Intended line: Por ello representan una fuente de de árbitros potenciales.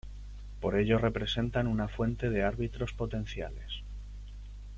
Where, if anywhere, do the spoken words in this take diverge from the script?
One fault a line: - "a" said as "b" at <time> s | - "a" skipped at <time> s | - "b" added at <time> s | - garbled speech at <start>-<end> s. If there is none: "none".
- "de" skipped at 2.4 s